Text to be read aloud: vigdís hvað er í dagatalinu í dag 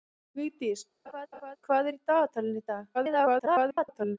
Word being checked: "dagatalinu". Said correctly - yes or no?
yes